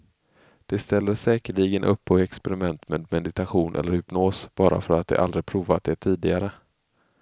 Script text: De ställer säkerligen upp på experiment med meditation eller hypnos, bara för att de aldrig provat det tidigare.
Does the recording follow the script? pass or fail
pass